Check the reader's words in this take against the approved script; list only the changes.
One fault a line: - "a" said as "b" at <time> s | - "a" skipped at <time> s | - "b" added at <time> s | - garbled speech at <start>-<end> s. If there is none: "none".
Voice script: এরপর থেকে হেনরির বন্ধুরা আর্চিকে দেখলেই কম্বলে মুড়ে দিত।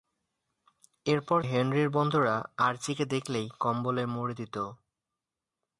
- "থেকে" skipped at 1.4 s